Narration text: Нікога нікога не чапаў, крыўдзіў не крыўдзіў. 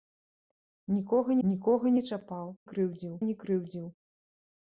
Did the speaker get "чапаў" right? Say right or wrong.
right